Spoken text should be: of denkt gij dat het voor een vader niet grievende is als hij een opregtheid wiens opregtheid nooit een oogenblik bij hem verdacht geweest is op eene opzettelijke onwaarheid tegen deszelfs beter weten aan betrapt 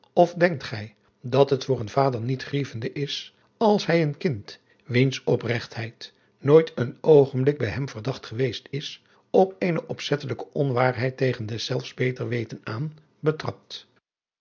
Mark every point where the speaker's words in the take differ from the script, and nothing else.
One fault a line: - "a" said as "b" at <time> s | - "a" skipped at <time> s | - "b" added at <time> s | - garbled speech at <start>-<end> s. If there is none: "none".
- "opregtheid" said as "kind" at 4.2 s